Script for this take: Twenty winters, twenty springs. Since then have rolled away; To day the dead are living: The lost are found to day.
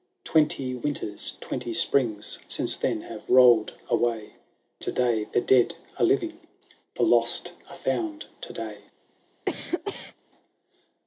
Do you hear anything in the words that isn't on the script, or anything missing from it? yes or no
no